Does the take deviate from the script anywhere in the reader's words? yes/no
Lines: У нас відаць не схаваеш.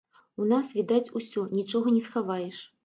yes